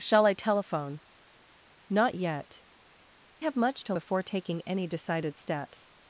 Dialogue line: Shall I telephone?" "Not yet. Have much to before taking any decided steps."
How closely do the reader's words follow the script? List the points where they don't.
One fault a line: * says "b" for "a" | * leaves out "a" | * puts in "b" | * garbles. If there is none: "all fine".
all fine